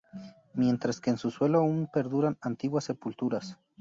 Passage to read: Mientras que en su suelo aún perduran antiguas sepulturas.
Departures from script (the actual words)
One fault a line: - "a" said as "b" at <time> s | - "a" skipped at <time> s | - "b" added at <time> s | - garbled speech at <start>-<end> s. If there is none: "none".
none